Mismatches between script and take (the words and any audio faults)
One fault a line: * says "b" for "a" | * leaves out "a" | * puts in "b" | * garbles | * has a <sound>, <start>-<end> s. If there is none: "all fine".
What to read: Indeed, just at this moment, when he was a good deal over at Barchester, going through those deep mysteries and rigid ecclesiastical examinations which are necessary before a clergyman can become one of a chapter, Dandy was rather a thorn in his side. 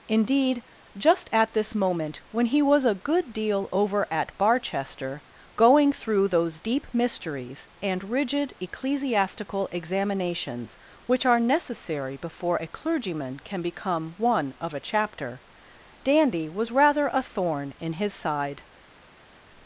all fine